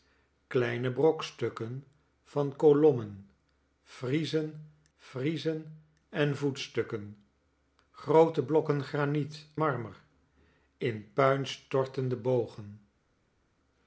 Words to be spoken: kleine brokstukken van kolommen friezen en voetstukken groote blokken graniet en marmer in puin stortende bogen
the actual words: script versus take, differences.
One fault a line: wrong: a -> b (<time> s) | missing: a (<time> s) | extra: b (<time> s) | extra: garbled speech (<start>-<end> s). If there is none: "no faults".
extra: friezen (5.0 s)
missing: en (9.5 s)